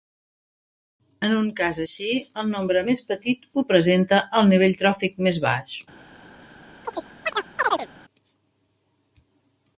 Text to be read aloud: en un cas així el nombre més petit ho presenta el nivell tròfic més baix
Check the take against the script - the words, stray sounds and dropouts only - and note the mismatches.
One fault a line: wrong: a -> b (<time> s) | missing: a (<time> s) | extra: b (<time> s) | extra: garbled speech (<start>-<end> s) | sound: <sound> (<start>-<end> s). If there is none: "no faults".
sound: chirp (6.8-7.9 s)